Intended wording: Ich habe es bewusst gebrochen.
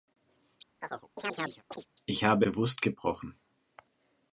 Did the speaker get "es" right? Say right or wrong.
wrong